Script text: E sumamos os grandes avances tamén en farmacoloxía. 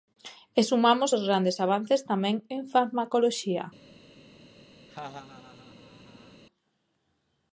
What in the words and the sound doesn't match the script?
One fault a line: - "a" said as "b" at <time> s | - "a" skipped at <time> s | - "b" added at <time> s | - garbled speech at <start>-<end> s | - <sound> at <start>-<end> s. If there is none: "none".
- laugh at 4.9-6.4 s